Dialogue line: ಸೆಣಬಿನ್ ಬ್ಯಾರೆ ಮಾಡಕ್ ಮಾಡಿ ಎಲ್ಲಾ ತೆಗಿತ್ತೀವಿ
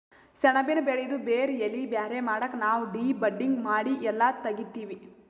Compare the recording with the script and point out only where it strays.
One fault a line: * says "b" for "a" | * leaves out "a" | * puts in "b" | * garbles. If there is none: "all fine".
* puts in "ಬೆಳಿದು ಬೇರ್ ಎಲಿ"
* puts in "ನಾವ್ ಡಿ ಬಡ್ಡಿಂಗ್"